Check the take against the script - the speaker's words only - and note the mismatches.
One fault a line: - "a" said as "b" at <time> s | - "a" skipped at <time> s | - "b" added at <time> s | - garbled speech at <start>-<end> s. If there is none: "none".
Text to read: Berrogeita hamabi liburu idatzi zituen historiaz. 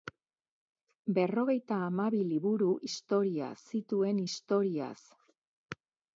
- "idatzi" said as "historiaz" at 2.8 s